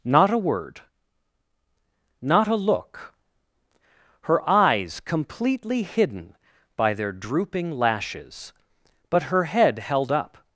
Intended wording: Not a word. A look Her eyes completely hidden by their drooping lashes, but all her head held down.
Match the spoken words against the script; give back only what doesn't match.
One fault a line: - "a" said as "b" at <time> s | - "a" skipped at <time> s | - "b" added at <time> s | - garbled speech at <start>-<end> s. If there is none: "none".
- "Not" added at 2.2 s
- "all" skipped at 9.3 s
- "down" said as "up" at 10.1 s